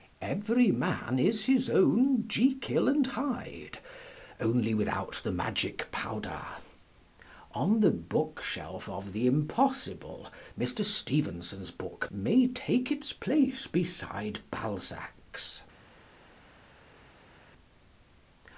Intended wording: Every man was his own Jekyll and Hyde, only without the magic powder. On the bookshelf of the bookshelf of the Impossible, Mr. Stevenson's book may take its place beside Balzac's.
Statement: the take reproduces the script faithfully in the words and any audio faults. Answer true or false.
false